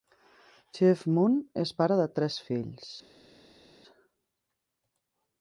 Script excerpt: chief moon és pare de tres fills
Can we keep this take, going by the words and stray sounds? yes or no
yes